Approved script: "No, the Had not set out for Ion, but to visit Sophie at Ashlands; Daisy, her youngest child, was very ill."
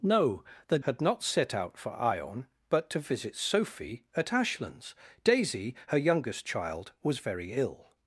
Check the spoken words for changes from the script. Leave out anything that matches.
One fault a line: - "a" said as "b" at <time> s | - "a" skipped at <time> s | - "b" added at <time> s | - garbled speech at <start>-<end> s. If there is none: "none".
none